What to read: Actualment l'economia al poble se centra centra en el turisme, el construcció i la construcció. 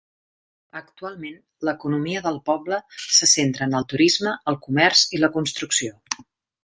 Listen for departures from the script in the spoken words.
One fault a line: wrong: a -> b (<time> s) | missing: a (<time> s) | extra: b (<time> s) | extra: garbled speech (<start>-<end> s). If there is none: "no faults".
wrong: al -> del (2.3 s)
missing: centra (3.7 s)
wrong: construcció -> comerç (4.7 s)